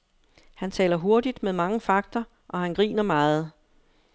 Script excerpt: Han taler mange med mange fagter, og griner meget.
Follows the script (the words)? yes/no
no